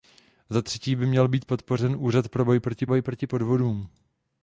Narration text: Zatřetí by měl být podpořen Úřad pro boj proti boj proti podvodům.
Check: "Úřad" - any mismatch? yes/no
no